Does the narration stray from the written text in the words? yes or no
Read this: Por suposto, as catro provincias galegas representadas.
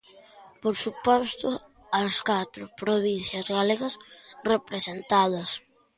no